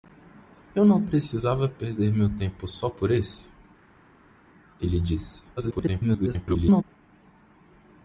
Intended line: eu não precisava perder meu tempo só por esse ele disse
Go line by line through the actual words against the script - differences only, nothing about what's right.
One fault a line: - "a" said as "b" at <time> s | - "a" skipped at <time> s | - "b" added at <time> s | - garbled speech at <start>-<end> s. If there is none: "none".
- garbled speech at 5.6-6.8 s